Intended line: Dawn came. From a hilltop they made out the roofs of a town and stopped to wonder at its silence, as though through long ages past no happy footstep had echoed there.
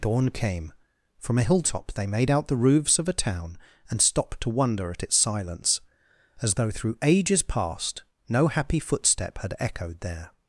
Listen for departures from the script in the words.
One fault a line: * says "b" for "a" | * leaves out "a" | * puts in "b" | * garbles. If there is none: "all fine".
* leaves out "long"